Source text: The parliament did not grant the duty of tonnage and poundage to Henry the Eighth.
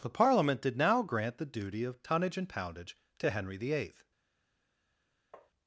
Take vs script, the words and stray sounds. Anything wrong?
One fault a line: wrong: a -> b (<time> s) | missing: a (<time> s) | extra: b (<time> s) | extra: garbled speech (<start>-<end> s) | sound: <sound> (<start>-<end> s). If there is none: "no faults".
wrong: not -> now (0.8 s)
sound: tap (5.3-5.5 s)